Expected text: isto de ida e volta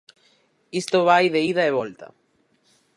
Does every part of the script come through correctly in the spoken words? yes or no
no